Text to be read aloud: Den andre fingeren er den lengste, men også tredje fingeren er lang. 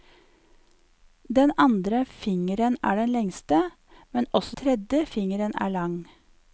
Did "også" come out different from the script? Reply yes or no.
no